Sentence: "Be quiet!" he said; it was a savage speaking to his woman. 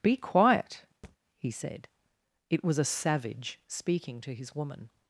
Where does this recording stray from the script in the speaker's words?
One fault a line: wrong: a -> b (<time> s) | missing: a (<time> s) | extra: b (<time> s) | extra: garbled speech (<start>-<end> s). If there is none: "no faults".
no faults